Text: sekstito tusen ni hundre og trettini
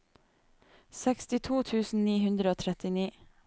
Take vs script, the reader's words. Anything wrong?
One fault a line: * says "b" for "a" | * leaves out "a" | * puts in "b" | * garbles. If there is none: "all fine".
all fine